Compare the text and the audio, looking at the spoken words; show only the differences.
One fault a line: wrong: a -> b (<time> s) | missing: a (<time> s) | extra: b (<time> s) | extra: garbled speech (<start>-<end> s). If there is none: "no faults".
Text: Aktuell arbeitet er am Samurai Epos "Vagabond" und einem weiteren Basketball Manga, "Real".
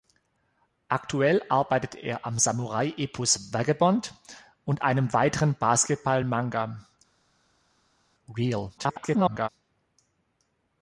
extra: garbled speech (8.8-9.5 s)